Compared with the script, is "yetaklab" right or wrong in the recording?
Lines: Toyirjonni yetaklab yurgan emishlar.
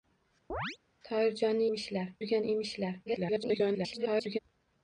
wrong